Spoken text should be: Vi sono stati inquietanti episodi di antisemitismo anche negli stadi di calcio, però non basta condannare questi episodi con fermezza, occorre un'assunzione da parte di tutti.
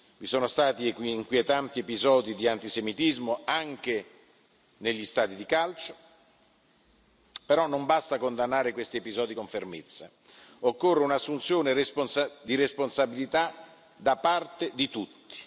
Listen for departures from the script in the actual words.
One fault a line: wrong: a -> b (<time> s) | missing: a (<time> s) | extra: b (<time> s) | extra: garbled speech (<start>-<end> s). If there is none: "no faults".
extra: di responsabilità (12.4 s)